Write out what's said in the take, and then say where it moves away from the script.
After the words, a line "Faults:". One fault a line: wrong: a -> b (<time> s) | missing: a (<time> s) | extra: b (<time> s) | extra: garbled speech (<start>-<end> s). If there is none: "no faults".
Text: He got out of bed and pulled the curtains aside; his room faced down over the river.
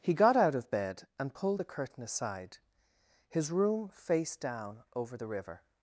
He got out of bed and pulled the curtain aside; his room faced down over the river.
Faults:
wrong: curtains -> curtain (1.6 s)